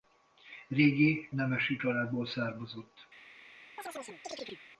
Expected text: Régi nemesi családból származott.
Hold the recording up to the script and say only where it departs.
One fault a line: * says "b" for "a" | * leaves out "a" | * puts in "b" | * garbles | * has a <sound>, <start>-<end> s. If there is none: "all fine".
* has a chirp, 3.8-4.6 s